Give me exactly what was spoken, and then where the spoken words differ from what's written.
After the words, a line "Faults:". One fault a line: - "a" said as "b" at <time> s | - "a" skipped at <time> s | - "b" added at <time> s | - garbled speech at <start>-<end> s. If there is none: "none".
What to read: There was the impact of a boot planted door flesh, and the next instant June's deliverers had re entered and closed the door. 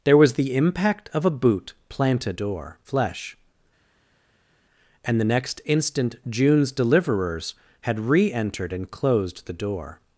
There was the impact of a boot planted door flesh, and the next instant June's deliverers had re entered and closed the door.
Faults:
none